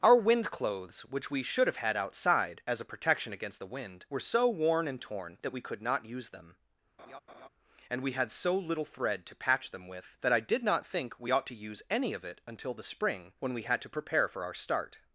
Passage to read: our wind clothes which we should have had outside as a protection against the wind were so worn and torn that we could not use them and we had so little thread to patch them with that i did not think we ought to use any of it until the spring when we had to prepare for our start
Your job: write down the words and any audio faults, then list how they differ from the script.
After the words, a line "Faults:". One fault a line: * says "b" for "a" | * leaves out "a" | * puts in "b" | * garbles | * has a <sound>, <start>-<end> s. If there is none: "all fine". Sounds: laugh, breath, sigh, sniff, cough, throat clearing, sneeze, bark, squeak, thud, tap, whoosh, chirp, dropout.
our wind clothes which we should have had outside as a protection against the wind were so worn and torn that we could not use them and we had so little thread to patch them with that i did not think we ought to use any of it until the spring when we had to prepare for our start
Faults:
* has a laugh, 7.0-7.5 s